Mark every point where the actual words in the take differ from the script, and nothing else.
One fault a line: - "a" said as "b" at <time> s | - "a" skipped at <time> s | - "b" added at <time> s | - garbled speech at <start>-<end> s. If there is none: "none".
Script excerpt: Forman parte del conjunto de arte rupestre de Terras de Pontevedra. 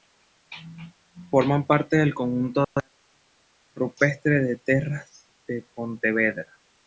none